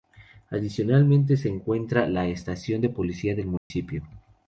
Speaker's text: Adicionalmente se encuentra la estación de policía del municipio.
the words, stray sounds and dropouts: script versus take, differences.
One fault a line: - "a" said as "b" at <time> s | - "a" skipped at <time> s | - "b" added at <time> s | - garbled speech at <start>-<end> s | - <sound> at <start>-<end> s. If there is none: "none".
- dropout at 3.6-3.7 s